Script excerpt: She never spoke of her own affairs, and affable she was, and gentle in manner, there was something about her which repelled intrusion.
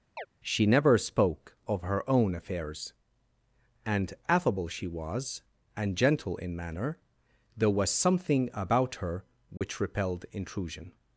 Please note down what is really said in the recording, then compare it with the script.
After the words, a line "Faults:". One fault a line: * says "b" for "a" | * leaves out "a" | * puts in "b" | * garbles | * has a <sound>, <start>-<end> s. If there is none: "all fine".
She never spoke of her own affairs, and affable she was, and gentle in manner, there was something about her which repelled intrusion.
Faults:
* has a chirp, 0.2-0.3 s
* has a dropout, 9.6-9.6 s